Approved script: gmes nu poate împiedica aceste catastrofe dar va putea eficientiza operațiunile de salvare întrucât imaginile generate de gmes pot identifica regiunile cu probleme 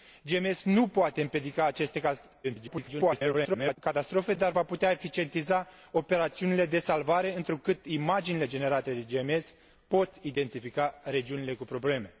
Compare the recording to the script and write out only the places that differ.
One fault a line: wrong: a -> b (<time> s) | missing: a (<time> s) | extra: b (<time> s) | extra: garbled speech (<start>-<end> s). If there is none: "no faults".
extra: garbled speech (2.4-3.8 s)